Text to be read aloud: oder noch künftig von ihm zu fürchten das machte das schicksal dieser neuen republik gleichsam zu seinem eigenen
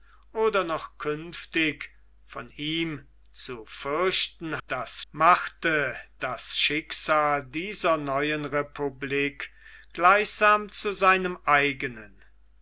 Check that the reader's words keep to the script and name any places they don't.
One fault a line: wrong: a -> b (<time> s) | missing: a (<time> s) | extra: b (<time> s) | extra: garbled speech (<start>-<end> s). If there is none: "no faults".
no faults